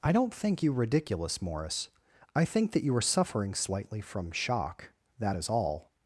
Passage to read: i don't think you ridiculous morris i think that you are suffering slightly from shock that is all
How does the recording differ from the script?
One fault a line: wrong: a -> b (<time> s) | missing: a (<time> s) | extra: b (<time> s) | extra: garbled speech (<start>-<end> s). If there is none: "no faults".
no faults